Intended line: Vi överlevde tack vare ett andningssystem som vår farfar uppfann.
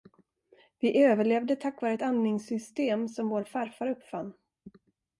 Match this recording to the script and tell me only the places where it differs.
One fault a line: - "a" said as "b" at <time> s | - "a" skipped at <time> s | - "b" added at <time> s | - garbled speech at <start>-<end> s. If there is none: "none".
none